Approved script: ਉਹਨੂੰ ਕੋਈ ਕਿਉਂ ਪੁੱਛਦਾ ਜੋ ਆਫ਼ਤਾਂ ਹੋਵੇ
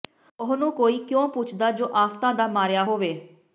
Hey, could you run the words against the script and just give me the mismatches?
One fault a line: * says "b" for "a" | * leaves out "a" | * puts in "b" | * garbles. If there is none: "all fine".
* puts in "ਦਾ ਮਾਰਿਆ"